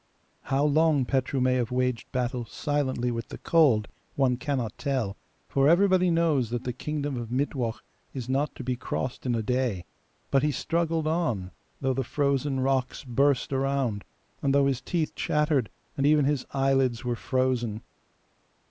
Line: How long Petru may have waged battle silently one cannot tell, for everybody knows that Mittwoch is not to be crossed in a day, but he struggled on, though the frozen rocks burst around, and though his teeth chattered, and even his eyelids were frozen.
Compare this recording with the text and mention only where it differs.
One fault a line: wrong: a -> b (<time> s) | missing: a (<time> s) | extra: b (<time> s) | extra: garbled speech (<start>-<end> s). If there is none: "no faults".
extra: with the cold (3.1 s)
extra: the kingdom of (6.6 s)